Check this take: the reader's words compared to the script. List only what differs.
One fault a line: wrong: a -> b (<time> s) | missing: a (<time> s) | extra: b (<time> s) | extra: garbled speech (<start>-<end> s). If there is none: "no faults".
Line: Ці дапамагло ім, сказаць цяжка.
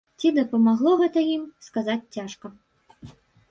extra: гэта (1.0 s)